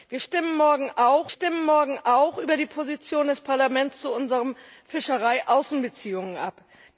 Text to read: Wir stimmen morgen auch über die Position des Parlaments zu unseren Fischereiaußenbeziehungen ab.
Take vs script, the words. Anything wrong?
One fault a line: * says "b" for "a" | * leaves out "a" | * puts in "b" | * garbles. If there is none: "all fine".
* puts in "stimmen morgen auch"